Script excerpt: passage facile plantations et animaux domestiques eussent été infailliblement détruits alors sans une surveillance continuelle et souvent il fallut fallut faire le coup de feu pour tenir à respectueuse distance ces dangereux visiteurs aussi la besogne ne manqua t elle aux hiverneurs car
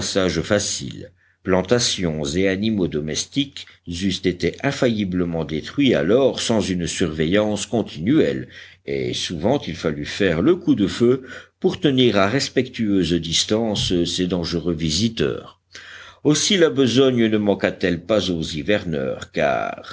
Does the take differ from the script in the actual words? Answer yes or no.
yes